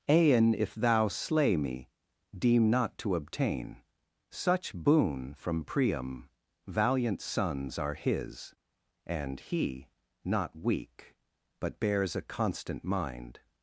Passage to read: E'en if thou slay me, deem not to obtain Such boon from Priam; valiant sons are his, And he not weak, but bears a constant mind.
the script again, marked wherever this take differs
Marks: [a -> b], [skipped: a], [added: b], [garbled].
E'en if thou slay me, deem not to obtain Such boon from Priam; valiant sons are his, And he not weak, but bears a constant mind.